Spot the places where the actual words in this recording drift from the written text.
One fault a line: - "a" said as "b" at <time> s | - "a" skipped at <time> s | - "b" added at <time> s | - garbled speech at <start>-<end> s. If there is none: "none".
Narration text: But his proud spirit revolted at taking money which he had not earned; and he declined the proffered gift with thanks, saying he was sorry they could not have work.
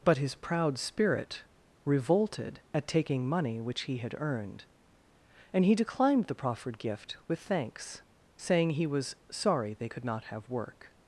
- "not" skipped at 4.2 s